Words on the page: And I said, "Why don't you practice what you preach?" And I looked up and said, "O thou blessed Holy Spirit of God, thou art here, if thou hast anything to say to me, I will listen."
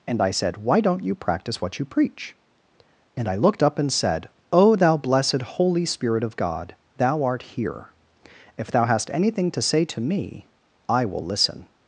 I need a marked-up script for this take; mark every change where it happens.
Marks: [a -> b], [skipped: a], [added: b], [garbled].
And I said, "Why don't you practice what you preach?" And I looked up and said, "O thou blessed Holy Spirit of God, thou art here, if thou hast anything to say to me, I will listen."